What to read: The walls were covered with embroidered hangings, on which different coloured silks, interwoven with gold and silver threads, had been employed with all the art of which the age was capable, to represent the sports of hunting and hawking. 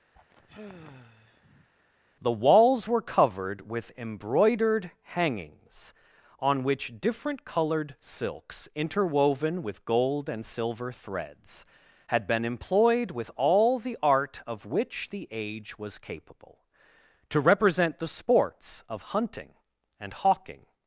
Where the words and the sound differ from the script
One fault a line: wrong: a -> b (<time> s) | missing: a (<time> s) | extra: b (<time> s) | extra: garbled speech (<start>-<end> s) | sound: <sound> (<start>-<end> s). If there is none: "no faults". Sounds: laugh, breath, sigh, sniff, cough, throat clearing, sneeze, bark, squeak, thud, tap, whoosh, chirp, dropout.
sound: sigh (0.1-1.7 s)